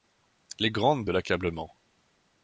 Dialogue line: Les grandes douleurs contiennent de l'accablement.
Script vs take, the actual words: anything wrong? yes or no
yes